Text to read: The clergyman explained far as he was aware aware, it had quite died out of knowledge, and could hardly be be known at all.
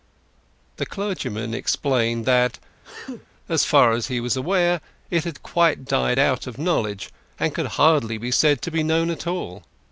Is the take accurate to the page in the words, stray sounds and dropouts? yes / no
no